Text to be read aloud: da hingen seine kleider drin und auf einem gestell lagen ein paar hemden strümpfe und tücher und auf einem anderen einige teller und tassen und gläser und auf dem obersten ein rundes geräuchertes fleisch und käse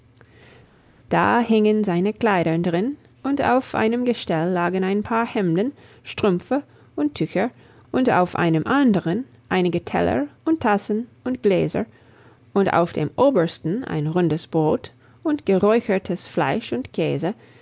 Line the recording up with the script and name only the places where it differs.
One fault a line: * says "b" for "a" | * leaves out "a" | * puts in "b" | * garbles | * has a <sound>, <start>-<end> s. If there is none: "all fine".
* puts in "brot und"